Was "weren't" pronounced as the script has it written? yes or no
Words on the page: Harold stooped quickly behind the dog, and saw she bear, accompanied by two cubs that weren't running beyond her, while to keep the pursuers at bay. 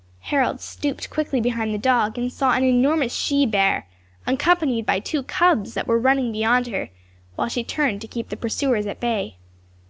no